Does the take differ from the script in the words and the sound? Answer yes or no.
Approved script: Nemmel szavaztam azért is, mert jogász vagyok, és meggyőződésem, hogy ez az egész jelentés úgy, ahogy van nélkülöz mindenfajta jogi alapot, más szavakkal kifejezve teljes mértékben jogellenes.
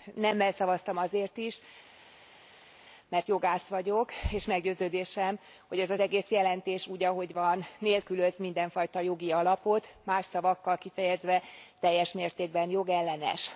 no